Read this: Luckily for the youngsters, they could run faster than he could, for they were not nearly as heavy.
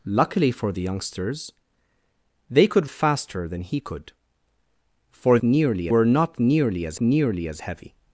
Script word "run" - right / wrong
wrong